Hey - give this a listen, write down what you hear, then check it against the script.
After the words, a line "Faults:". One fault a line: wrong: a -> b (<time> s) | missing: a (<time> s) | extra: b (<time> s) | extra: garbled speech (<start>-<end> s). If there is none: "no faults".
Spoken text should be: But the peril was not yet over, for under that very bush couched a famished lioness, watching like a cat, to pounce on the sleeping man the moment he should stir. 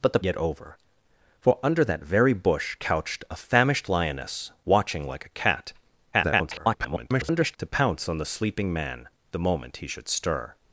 But the yet over, for under that very bush couched a famished lioness, watching like a cat, [garbled] to pounce on the sleeping man the moment he should stir.
Faults:
missing: peril was not (0.2 s)
extra: garbled speech (6.1-7.6 s)